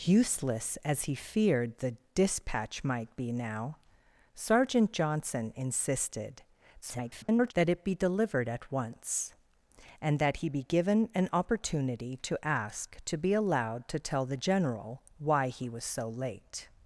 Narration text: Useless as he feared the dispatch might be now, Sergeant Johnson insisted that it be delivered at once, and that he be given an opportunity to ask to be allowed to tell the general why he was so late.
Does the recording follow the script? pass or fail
fail